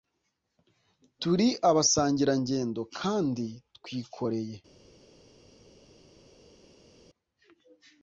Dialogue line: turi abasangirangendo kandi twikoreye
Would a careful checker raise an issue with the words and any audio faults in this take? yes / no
no